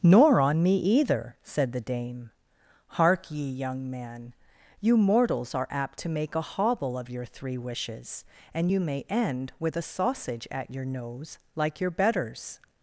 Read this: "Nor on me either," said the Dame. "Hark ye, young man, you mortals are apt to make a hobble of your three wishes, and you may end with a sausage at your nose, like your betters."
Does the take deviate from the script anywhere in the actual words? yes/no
no